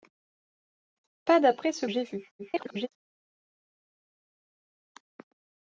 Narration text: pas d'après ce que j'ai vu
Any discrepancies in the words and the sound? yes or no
yes